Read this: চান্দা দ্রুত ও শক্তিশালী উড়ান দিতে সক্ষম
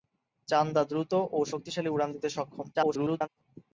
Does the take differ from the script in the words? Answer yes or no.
yes